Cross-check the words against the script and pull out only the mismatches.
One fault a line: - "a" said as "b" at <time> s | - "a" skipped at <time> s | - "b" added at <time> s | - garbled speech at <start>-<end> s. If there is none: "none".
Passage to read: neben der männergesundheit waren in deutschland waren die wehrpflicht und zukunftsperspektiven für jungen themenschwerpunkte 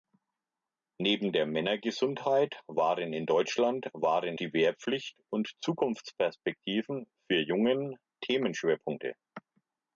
none